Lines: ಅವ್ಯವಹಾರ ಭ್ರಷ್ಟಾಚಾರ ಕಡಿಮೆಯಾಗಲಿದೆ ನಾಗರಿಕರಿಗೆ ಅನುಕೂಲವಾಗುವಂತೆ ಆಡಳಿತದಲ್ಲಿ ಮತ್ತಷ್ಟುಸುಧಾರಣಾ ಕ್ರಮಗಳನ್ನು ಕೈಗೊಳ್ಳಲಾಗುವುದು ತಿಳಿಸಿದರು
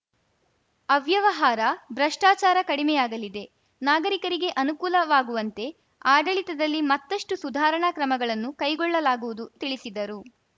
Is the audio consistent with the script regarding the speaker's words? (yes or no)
yes